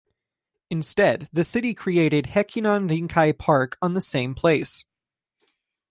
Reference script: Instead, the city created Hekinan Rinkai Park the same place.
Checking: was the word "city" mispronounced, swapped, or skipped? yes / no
no